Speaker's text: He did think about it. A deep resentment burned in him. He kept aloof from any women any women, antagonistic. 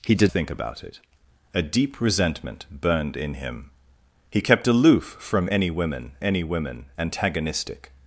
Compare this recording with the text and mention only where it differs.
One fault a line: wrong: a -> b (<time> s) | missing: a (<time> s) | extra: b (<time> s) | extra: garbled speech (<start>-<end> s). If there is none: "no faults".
no faults